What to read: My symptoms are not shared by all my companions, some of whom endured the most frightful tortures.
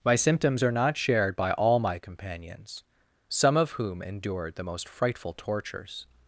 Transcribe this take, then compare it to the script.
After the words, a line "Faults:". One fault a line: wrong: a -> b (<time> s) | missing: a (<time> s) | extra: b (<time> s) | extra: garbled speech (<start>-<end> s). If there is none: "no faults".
My symptoms are not shared by all my companions, some of whom endured the most frightful tortures.
Faults:
no faults